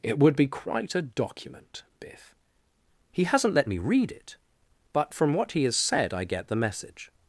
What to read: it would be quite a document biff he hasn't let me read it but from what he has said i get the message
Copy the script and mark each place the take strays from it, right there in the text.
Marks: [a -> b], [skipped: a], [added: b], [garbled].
it would be quite a document biff he hasn't let me read it but from what he has said i get the message